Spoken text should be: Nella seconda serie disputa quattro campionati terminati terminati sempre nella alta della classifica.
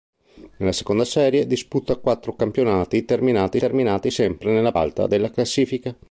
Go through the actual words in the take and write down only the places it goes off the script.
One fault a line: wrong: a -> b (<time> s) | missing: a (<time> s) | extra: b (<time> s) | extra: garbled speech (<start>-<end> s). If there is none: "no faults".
no faults